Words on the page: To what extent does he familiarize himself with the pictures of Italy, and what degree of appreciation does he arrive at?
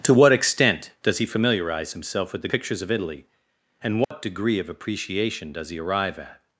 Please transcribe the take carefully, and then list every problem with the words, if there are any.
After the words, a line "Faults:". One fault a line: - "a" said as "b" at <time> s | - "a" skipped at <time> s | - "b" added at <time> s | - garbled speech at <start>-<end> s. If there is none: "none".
To what extent does he familiarize himself with the pictures of Italy, and what degree of appreciation does he arrive at?
Faults:
none